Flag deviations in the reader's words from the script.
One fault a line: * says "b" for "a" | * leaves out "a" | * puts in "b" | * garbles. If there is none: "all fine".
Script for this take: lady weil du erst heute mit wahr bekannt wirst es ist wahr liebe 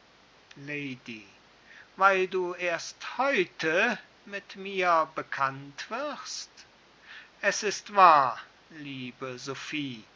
* says "mir" for "wahr"